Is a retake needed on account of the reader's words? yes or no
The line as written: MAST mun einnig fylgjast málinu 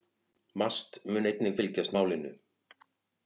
no